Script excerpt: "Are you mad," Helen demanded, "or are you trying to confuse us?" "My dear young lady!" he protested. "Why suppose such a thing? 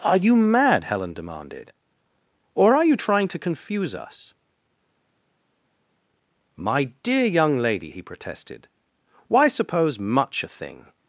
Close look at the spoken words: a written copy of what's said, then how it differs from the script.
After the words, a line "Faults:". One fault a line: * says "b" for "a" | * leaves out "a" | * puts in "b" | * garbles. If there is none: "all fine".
"Are you mad," Helen demanded, "or are you trying to confuse us?" "My dear young lady!" he protested. "Why suppose much a thing?
Faults:
* says "much" for "such"